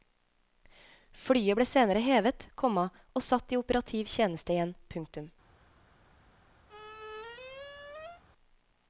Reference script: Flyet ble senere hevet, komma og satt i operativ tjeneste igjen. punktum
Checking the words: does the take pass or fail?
pass